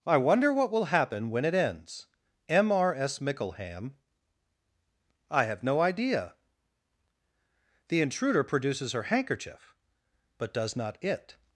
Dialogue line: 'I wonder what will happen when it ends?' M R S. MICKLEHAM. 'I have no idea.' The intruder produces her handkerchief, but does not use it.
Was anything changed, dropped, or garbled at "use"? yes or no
yes